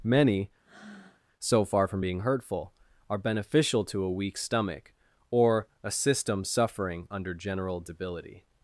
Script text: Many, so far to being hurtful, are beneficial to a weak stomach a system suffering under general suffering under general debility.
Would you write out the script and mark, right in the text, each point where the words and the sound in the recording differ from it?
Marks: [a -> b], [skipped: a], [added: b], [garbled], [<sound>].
Many, [breath] so far [to -> from] being hurtful, are beneficial to a weak stomach [added: or] a system suffering under general [skipped: suffering under general] debility.